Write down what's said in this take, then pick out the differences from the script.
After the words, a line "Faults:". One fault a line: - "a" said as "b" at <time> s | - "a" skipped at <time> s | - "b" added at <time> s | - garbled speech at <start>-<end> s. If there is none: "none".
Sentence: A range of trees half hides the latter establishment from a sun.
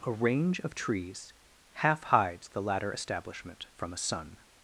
A range of trees half hides the latter establishment from a sun.
Faults:
none